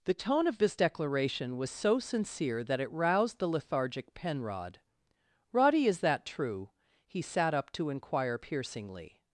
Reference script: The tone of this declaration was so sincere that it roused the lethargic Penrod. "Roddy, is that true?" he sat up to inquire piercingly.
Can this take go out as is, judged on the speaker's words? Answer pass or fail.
pass